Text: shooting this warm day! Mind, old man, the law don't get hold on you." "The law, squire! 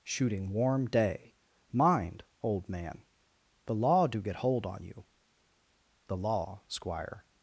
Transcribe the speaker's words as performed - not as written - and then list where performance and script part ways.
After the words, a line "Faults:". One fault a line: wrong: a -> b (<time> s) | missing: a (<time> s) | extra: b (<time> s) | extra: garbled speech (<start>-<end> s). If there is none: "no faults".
shooting warm day! Mind, old man, the law do get hold on you." "The law, squire!
Faults:
missing: this (0.5 s)
wrong: don't -> do (4.1 s)